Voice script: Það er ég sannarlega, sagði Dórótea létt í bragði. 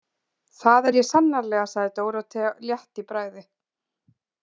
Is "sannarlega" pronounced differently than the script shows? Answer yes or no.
no